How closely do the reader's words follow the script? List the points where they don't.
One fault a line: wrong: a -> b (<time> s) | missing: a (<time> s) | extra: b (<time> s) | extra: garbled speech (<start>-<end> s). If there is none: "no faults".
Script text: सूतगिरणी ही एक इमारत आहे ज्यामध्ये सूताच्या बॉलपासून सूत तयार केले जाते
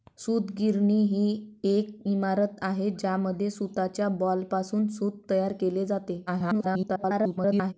extra: garbled speech (6.3-7.7 s)